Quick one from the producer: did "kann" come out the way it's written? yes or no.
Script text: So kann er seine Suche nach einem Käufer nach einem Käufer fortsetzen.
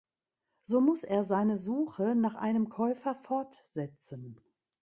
no